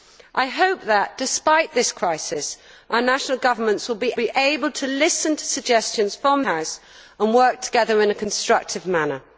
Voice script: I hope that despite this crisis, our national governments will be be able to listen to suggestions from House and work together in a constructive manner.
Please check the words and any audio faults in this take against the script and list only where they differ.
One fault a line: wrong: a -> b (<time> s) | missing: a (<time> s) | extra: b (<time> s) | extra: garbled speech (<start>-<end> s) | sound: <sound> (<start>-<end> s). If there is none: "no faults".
no faults